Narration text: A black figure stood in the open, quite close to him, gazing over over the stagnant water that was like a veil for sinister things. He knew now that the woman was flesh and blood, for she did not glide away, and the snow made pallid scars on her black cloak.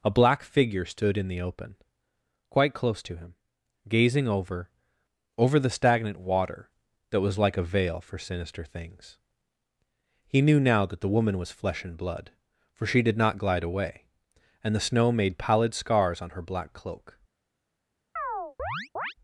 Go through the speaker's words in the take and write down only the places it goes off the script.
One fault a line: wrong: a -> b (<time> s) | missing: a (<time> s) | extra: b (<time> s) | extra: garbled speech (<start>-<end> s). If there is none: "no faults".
no faults